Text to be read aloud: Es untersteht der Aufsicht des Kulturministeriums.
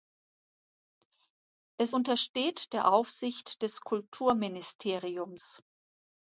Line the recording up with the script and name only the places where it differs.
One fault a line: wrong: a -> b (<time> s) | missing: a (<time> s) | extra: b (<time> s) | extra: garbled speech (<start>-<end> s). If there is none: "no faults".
no faults